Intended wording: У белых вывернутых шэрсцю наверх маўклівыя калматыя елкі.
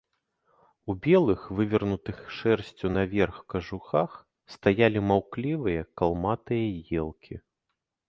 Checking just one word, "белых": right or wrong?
right